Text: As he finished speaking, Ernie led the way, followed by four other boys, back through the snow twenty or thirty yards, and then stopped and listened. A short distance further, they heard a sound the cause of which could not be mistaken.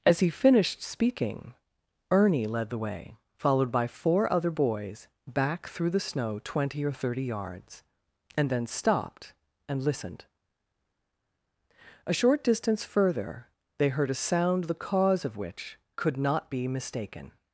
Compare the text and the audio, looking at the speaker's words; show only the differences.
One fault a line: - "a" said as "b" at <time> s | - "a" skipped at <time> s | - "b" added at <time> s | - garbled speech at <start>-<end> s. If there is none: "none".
none